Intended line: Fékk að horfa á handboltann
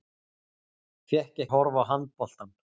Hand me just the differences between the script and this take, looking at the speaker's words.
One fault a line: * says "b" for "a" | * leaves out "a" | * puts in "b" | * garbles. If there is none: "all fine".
all fine